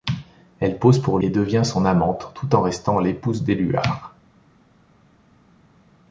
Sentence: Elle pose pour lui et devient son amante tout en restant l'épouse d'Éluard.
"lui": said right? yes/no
no